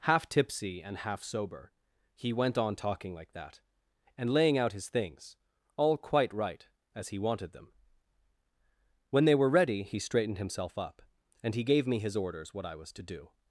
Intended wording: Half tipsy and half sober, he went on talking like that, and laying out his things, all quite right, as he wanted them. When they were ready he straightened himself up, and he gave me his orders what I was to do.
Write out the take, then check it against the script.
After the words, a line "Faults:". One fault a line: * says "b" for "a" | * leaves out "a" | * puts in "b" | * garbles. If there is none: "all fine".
Half tipsy and half sober, he went on talking like that, and laying out his things, all quite right, as he wanted them. When they were ready he straightened himself up, and he gave me his orders what I was to do.
Faults:
all fine